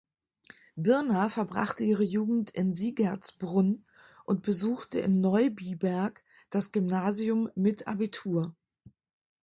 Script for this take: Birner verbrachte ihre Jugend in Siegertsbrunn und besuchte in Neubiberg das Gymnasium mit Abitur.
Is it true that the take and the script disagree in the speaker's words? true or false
false